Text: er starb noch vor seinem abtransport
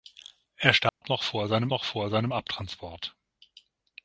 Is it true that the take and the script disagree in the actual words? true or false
true